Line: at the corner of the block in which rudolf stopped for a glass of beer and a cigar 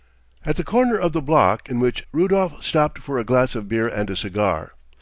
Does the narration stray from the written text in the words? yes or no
no